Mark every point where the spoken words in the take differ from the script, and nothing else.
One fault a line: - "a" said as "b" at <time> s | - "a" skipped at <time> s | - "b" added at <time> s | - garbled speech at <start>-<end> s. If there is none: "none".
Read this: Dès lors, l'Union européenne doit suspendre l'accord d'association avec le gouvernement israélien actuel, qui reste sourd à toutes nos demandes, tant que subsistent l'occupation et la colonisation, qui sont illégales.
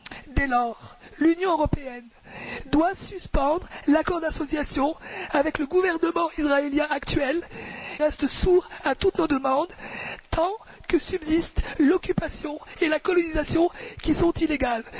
- "qui" skipped at 7.4 s